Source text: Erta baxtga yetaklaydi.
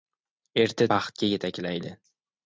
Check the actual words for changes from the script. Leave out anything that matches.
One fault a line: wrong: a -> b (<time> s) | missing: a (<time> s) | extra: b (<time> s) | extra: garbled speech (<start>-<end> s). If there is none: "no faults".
no faults